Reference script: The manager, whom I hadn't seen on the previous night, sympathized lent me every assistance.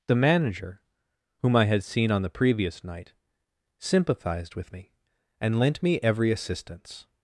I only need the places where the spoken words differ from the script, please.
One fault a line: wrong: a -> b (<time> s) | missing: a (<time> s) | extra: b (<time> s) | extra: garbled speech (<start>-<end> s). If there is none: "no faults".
wrong: hadn't -> had (1.7 s)
extra: with me and (4.6 s)